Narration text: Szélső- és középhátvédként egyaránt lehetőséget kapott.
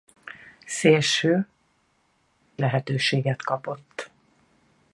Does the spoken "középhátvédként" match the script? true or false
false